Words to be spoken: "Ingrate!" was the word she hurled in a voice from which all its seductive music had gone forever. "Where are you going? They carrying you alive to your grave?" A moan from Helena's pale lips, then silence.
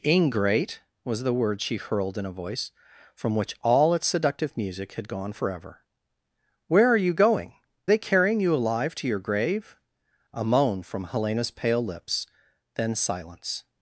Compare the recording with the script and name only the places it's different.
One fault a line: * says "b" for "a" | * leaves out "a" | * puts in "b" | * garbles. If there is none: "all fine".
all fine